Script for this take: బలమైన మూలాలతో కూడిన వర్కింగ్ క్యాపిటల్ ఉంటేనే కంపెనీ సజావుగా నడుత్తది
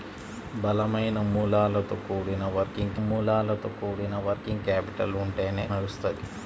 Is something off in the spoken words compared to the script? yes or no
yes